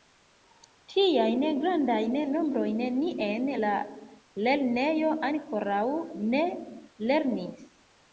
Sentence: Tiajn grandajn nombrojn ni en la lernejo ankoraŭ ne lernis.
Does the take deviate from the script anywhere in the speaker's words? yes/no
no